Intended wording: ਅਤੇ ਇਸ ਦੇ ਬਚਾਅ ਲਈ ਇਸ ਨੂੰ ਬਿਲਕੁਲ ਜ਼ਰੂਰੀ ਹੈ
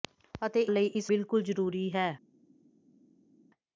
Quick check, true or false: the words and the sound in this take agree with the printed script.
false